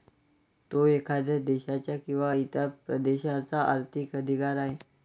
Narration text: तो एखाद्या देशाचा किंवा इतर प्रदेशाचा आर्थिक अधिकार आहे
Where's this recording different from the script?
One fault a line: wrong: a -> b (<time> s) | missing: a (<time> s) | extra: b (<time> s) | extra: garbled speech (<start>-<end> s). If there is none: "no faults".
no faults